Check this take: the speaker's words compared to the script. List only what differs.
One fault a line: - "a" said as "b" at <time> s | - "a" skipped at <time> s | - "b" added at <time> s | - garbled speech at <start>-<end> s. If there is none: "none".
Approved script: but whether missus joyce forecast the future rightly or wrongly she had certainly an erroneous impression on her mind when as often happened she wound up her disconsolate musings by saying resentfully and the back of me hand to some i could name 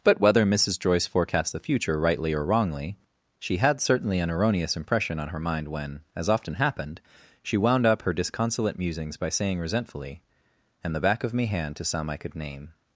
none